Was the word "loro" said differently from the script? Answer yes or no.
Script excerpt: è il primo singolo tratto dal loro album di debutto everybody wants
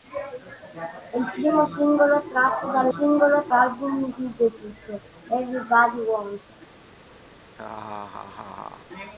yes